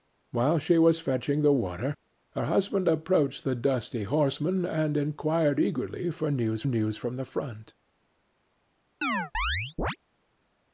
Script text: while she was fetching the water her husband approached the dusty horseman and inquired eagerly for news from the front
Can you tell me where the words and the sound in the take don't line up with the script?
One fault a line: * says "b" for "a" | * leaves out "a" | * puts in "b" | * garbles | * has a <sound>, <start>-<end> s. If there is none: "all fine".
* puts in "news"
* has a chirp, 9.0-10.0 s